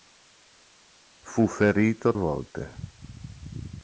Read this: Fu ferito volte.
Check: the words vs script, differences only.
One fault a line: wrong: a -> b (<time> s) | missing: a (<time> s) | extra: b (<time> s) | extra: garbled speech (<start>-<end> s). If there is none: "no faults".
no faults